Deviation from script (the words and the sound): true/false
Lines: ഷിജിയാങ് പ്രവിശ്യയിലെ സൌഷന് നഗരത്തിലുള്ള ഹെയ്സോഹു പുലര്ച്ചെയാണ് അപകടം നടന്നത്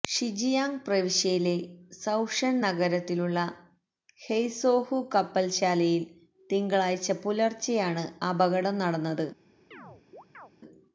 true